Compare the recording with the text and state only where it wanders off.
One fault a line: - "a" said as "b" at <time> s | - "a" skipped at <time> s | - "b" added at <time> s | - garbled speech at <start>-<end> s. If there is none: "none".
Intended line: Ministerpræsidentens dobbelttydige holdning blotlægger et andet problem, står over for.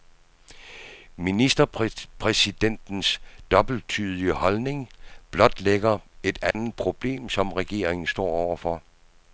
- "som regeringen" added at 7.3 s